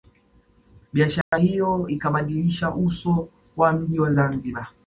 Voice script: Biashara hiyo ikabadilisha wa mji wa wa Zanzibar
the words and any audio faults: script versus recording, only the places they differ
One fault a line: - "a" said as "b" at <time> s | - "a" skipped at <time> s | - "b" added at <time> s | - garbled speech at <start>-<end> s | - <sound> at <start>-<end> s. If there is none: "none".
- dropout at 1.2-1.3 s
- "uso" added at 2.7 s
- "wa" skipped at 4.1 s